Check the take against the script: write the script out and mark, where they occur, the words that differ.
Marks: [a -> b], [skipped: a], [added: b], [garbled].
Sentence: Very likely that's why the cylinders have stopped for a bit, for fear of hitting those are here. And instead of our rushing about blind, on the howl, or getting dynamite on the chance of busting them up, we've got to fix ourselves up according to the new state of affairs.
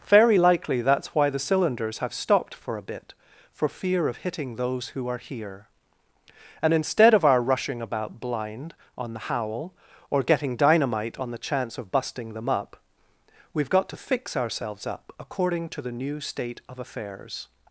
Very likely that's why the cylinders have stopped for a bit, for fear of hitting those [added: who] are here. And instead of our rushing about blind, on the howl, or getting dynamite on the chance of busting them up, we've got to fix ourselves up according to the new state of affairs.